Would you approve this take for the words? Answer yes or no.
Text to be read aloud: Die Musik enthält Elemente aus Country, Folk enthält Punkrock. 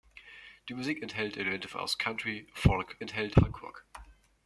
yes